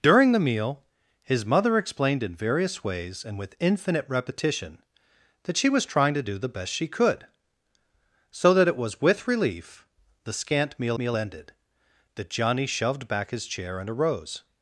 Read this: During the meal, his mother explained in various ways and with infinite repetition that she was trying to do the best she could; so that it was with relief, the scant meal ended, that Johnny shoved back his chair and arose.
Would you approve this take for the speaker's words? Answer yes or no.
no